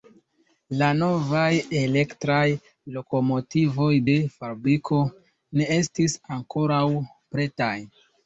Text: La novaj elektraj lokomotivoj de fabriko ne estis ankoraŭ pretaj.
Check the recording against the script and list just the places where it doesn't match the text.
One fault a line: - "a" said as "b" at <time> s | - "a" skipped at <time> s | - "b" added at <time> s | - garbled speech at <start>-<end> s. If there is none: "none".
none